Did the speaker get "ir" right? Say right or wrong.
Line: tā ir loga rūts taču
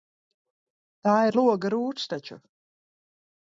right